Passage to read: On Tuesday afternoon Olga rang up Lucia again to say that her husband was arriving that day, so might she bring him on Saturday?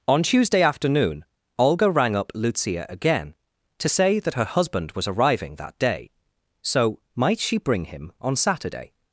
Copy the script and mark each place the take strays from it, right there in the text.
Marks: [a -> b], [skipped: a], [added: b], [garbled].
On Tuesday afternoon Olga rang up Lucia again to say that her husband was arriving that day, so might she bring him on Saturday?